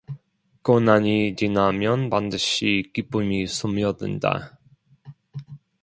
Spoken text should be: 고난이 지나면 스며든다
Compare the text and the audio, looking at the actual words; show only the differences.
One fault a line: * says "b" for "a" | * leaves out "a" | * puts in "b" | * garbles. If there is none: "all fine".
* puts in "반드시 기쁨이"